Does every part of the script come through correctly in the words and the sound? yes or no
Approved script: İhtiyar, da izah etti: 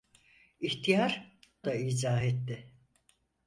yes